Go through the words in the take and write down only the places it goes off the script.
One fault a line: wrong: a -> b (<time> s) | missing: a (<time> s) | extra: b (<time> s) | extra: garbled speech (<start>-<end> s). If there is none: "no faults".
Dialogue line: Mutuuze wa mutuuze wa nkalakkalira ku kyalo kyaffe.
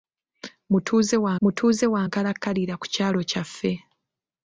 no faults